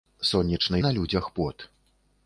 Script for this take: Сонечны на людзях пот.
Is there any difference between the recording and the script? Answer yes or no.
no